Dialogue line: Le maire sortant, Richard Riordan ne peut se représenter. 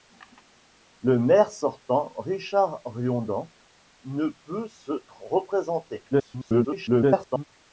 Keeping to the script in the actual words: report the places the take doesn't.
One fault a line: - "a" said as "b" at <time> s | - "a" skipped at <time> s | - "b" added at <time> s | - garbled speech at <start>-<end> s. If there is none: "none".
- garbled speech at 6.1-7.4 s